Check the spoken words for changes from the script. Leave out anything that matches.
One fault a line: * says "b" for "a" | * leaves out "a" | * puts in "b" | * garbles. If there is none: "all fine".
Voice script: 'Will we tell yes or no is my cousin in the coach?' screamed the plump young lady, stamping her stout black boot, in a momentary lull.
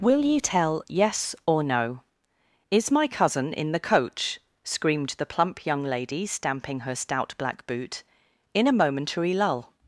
* says "you" for "we"